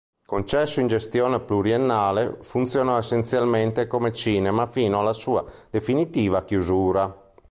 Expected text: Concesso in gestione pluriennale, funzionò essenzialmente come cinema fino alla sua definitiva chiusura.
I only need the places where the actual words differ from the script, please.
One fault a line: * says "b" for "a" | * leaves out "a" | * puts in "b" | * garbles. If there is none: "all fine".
all fine